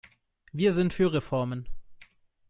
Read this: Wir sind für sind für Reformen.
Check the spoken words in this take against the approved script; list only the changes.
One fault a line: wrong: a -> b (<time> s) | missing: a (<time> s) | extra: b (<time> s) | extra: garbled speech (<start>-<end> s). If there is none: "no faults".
missing: sind für (1.1 s)